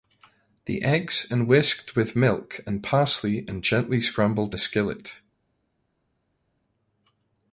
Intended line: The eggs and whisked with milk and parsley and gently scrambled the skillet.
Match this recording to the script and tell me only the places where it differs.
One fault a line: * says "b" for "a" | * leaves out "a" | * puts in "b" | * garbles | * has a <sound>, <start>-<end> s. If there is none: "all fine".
all fine